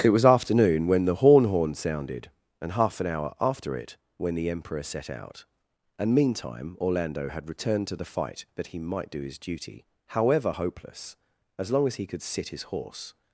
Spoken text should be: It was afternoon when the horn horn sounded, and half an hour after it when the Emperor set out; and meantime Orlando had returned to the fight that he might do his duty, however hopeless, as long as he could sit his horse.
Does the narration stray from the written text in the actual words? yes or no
no